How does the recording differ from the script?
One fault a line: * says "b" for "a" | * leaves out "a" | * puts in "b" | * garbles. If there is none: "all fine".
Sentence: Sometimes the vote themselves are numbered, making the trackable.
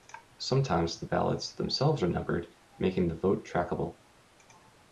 * says "ballots" for "vote"
* puts in "vote"